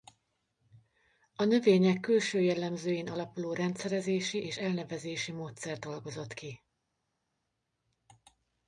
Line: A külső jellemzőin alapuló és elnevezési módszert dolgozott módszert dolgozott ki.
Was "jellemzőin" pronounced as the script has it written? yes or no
yes